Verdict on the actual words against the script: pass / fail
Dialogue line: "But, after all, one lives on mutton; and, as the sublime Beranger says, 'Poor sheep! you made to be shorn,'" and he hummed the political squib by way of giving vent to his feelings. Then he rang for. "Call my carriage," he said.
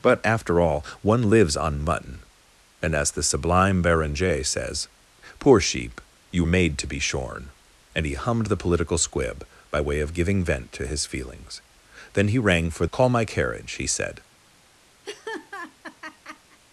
pass